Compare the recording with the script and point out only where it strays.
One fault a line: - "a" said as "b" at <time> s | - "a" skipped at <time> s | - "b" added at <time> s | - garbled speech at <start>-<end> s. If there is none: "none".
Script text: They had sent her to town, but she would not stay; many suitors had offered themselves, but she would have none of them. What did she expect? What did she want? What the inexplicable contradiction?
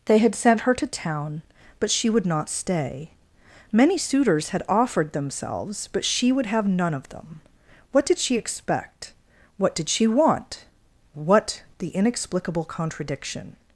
none